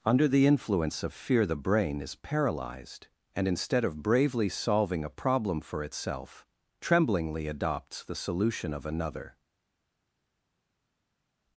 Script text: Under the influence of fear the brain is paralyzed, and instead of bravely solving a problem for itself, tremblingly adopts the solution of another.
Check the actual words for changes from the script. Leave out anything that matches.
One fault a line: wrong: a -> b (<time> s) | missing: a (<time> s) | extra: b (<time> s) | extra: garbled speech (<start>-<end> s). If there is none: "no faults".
no faults